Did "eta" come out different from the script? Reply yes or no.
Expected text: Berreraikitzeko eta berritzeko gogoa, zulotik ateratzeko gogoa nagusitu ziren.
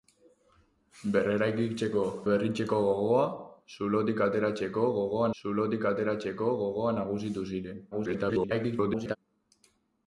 yes